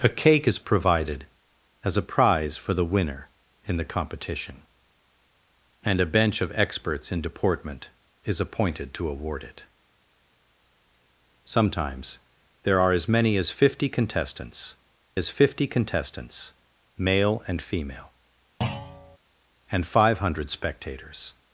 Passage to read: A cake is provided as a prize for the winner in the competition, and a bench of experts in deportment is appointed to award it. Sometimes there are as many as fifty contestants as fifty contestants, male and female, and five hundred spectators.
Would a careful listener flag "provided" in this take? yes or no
no